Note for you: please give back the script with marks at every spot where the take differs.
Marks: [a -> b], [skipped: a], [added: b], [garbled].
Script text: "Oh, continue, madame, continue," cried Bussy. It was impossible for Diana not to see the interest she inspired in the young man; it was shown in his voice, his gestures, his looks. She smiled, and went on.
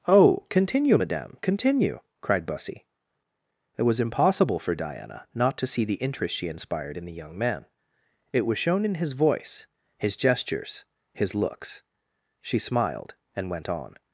"Oh, continue, madame, continue," cried Bussy. It was impossible for Diana not to see the interest she inspired in the young man; it was shown in his voice, his gestures, his looks. She smiled, and went on.